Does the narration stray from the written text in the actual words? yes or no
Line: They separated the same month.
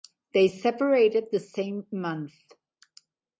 no